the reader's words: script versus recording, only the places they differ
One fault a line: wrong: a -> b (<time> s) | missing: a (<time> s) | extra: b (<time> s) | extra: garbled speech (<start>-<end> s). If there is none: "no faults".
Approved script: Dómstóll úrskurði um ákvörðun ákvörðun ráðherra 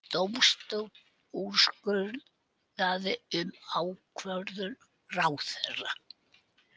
missing: ákvörðun (4.8 s)